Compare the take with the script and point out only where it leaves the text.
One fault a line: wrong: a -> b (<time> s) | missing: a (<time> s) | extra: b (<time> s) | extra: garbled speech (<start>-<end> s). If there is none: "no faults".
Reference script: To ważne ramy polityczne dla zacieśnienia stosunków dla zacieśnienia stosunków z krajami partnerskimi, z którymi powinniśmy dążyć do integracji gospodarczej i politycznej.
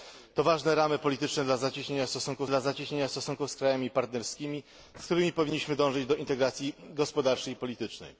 no faults